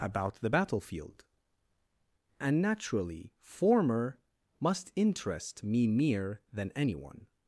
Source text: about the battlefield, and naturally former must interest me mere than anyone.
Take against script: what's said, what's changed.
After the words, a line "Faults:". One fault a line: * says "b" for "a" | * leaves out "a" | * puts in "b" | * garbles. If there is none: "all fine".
about the battlefield, and naturally former must interest me mere than anyone.
Faults:
all fine